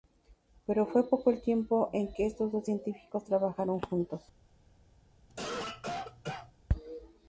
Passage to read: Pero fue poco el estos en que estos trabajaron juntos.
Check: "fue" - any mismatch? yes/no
no